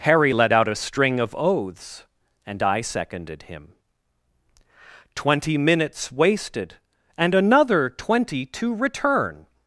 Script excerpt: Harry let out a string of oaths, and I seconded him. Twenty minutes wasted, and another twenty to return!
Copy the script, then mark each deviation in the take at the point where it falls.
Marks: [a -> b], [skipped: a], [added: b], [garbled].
Harry let out a string of oaths, and I seconded him. Twenty minutes wasted, and another twenty to return!